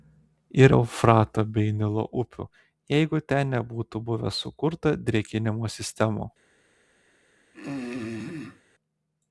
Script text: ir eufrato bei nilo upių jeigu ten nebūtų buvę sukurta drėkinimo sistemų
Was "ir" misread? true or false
false